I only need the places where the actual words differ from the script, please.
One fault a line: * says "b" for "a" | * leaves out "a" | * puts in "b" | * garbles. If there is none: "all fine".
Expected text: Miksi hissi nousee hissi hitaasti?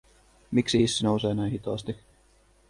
* says "näin" for "hissi"